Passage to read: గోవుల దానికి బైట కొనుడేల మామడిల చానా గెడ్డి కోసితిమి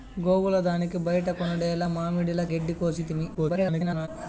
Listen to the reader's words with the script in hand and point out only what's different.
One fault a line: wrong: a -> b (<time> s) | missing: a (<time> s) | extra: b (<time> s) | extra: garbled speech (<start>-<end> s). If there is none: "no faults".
missing: చానా (2.4 s)
extra: garbled speech (3.3-4.1 s)